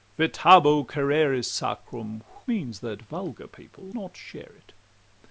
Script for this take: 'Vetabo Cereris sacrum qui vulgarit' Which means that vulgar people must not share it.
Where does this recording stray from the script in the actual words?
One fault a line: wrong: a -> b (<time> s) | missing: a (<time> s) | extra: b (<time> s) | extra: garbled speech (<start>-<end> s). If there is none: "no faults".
missing: qui vulgarit Which (2.2 s)
missing: must (3.9 s)